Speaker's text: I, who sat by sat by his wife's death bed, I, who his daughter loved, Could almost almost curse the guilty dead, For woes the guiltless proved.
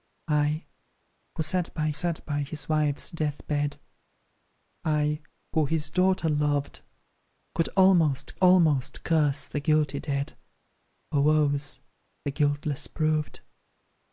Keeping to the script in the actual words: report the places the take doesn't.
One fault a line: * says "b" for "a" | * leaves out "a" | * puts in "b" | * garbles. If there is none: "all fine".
all fine